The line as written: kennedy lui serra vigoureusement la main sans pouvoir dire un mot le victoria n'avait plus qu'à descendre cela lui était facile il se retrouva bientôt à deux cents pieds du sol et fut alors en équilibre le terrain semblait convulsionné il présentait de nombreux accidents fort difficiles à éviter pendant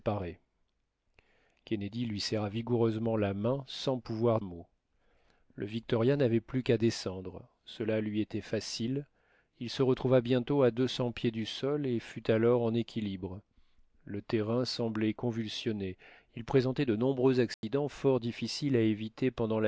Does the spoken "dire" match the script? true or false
false